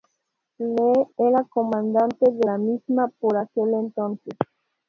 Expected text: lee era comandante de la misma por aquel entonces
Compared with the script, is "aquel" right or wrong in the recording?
right